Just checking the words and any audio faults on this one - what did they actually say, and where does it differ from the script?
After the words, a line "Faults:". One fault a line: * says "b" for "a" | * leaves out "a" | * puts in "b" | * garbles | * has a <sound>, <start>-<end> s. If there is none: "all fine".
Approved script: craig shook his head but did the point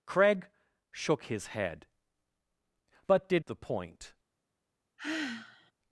craig shook his head but did the point
Faults:
* has a sigh, 5.0-5.7 s